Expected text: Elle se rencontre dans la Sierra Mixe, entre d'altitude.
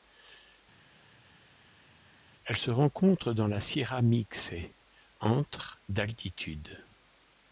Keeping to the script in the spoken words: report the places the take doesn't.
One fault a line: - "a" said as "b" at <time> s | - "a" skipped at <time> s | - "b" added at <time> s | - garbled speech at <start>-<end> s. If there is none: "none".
none